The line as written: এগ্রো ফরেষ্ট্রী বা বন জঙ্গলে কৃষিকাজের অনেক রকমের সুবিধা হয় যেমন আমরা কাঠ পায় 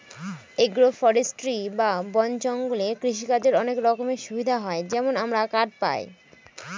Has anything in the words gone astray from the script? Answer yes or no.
no